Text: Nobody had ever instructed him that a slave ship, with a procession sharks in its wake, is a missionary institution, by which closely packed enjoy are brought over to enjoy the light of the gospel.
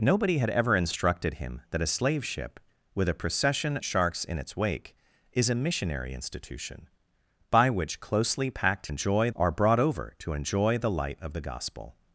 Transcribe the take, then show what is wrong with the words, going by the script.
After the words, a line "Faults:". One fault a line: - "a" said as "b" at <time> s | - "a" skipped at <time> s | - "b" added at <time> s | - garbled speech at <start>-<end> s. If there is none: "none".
Nobody had ever instructed him that a slave ship, with a procession sharks in its wake, is a missionary institution, by which closely packed enjoy are brought over to enjoy the light of the gospel.
Faults:
none